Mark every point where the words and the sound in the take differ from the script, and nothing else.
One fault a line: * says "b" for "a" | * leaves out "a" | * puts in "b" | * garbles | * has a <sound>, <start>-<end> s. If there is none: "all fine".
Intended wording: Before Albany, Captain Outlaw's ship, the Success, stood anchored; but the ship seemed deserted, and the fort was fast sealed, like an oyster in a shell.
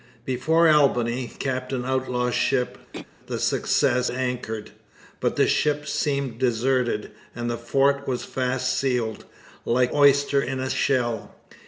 * has a throat clearing, 2.9-3.1 s
* leaves out "stood"
* leaves out "an"